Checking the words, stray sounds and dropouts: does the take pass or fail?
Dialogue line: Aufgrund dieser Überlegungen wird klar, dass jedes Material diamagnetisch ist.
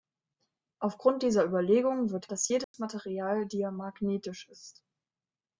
fail